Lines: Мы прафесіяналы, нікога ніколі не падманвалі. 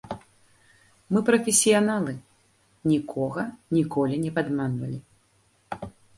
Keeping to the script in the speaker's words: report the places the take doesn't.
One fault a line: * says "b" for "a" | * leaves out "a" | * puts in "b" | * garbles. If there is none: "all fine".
all fine